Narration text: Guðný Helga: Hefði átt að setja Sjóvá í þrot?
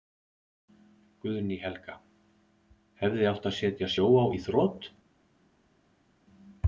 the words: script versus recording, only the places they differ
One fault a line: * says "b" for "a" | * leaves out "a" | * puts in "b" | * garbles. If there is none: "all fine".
all fine